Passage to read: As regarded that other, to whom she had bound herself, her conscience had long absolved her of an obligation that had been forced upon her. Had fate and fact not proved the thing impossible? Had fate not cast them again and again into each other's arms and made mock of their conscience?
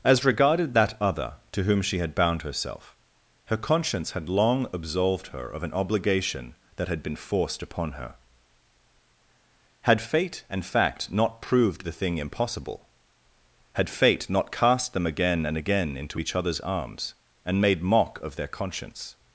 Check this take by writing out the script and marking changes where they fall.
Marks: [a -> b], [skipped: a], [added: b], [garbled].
As regarded that other, to whom she had bound herself, her conscience had long absolved her of an obligation that had been forced upon her. Had fate and fact not proved the thing impossible? Had fate not cast them again and again into each other's arms and made mock of their conscience?